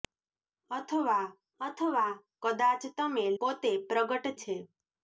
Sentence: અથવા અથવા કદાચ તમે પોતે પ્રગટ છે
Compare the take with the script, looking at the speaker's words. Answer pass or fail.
pass